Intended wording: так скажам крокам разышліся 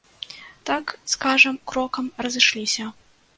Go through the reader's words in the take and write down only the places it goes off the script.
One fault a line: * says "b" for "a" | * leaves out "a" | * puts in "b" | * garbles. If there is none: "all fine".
all fine